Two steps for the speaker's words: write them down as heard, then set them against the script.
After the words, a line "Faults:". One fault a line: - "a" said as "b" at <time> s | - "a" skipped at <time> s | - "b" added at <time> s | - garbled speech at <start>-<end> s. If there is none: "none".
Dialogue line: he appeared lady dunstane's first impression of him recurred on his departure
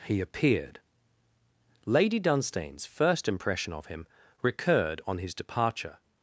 he appeared lady dunstane's first impression of him recurred on his departure
Faults:
none